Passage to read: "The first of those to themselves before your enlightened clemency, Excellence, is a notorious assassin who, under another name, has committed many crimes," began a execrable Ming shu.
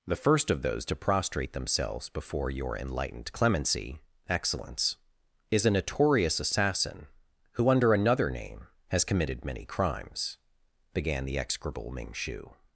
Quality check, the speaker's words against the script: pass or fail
fail